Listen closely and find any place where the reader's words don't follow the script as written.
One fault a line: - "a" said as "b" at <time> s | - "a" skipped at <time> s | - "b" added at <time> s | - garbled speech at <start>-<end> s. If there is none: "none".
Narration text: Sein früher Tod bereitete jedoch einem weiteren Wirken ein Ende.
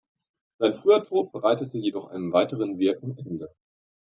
- "ein" skipped at 3.2 s